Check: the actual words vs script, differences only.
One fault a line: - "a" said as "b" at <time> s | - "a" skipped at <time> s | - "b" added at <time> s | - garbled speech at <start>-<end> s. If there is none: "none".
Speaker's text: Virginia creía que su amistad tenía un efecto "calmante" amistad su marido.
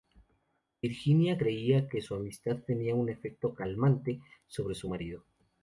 - "amistad" said as "sobre" at 4.5 s